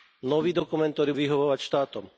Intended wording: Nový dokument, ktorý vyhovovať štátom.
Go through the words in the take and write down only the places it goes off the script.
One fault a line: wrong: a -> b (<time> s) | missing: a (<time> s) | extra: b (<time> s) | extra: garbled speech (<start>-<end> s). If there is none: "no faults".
no faults